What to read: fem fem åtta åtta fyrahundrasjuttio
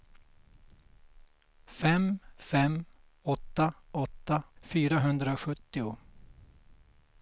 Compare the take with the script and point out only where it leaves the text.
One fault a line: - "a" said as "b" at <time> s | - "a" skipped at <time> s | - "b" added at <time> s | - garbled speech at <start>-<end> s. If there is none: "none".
none